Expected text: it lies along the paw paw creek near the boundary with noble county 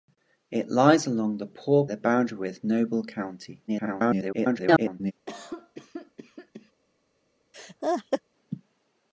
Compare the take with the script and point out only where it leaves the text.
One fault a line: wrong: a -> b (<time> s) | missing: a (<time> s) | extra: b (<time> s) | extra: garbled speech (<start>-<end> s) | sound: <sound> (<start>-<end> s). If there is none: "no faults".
missing: paw creek near (1.9 s)
extra: garbled speech (3.7-5.1 s)
sound: cough (5.3-6.7 s)
sound: laugh (7.5-8.2 s)